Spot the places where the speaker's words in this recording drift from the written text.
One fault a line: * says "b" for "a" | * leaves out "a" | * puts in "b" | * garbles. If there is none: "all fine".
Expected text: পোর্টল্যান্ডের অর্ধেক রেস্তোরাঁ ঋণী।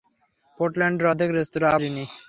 all fine